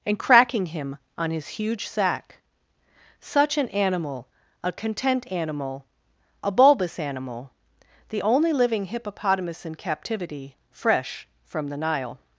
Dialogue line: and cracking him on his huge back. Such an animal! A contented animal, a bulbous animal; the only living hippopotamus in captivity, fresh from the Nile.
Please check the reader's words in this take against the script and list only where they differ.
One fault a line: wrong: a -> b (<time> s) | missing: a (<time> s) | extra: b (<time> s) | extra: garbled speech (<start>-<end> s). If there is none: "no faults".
wrong: back -> sack (1.9 s)
wrong: contented -> content (4.7 s)